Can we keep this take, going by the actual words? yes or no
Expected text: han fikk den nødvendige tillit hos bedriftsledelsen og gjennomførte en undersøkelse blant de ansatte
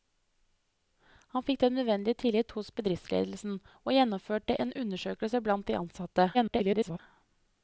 no